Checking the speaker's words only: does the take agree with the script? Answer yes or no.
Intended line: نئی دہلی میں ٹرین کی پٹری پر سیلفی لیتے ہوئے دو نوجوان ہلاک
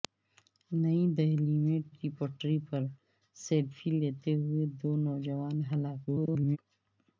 no